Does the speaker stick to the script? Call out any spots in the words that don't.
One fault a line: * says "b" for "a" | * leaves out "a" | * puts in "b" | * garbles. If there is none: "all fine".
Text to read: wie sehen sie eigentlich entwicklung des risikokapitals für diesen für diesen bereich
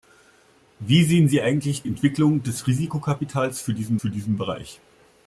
all fine